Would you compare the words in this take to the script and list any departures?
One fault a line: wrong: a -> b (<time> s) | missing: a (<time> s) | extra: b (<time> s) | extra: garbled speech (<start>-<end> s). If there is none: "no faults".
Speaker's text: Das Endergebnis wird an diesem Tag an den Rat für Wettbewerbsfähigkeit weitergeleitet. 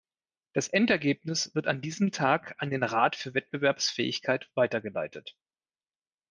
no faults